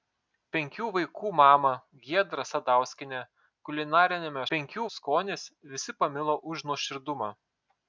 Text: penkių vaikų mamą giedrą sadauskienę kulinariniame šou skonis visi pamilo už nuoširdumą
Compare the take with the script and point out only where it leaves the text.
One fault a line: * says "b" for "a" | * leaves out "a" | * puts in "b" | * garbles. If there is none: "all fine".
* says "penkių" for "šou"